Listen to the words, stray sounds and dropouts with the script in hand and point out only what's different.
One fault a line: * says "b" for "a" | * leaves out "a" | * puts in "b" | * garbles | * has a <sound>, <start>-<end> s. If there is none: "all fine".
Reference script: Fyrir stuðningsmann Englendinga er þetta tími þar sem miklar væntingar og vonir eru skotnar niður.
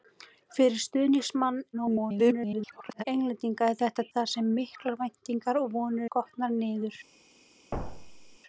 * garbles
* leaves out "tími"
* leaves out "eru"
* has a thud, 7.7-8.4 s